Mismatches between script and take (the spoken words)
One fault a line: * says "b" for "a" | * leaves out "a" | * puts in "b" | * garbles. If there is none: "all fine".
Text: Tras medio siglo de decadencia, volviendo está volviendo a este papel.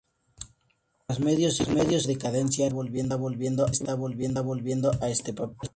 all fine